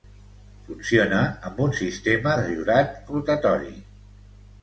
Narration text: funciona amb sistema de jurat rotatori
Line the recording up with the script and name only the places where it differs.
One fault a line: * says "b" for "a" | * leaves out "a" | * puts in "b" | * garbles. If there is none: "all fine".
* puts in "un"